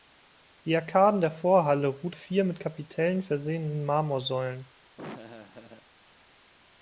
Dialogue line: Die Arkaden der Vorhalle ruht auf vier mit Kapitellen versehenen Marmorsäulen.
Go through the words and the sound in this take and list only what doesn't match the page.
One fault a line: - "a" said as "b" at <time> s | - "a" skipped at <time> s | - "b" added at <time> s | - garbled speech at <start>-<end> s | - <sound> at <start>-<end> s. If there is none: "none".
- "auf" skipped at 2.1 s
- laugh at 5.0-5.9 s